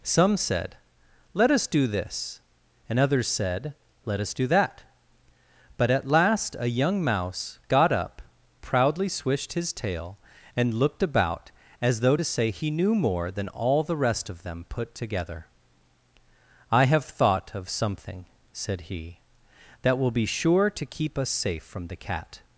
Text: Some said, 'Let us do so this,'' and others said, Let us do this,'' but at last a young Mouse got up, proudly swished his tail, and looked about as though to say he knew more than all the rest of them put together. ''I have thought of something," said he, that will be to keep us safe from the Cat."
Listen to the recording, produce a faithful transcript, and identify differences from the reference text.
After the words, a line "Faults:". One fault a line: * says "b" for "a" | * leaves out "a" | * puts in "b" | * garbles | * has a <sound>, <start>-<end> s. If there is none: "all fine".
Some said, 'Let us do this,'' and others said, Let us do that,'' but at last a young Mouse got up, proudly swished his tail, and looked about as though to say he knew more than all the rest of them put together. ''I have thought of something," said he, that will be sure to keep us safe from the Cat."
Faults:
* leaves out "so"
* says "that" for "this"
* puts in "sure"